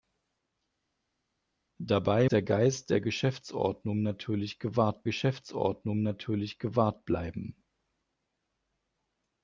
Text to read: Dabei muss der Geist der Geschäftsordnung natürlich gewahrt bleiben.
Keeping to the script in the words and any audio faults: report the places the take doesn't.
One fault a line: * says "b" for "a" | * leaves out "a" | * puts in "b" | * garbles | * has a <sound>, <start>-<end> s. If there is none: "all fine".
* leaves out "muss"
* puts in "Geschäftsordnung natürlich gewahrt"